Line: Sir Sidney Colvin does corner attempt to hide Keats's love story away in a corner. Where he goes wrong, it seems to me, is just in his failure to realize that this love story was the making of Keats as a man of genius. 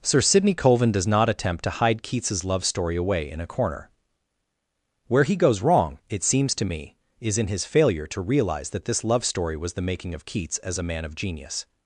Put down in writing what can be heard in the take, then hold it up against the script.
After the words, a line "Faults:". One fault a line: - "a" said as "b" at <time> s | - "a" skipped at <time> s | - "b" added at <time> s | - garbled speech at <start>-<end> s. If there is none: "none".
Sir Sidney Colvin does not attempt to hide Keats's love story away in a corner. Where he goes wrong, it seems to me, is in his failure to realize that this love story was the making of Keats as a man of genius.
Faults:
- "corner" said as "not" at 1.1 s
- "just" skipped at 7.4 s